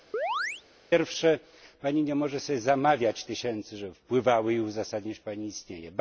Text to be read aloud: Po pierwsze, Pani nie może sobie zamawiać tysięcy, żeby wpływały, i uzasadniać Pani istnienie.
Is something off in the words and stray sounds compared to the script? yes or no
yes